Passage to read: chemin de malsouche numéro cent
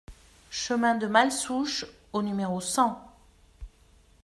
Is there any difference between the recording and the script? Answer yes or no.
yes